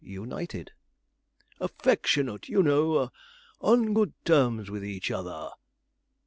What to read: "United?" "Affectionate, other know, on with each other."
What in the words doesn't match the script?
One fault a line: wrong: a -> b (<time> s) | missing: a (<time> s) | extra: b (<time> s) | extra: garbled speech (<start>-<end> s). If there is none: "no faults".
wrong: other -> you (2.5 s)
extra: good terms (3.9 s)